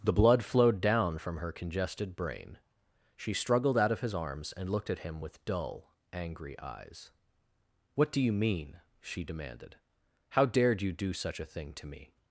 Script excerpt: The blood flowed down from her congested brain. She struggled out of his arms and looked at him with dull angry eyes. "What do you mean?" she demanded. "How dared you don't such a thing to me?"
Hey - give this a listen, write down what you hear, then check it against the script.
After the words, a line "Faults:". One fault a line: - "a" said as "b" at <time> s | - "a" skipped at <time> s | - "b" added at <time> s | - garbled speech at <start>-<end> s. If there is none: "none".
The blood flowed down from her congested brain. She struggled out of his arms and looked at him with dull angry eyes. "What do you mean?" she demanded. "How dared you do such a thing to me?"
Faults:
- "don't" said as "do" at 10.9 s